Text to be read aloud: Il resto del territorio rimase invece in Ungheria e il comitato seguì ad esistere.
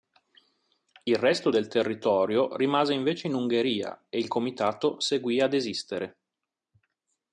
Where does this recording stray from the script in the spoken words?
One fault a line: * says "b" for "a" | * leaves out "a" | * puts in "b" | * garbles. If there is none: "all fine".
all fine